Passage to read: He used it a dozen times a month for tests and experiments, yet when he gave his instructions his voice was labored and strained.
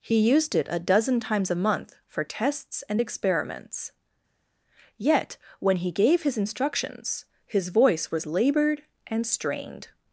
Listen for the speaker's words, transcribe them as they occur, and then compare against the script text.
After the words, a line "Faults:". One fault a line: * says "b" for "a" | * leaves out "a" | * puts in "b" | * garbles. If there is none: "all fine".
He used it a dozen times a month for tests and experiments, yet when he gave his instructions his voice was labored and strained.
Faults:
all fine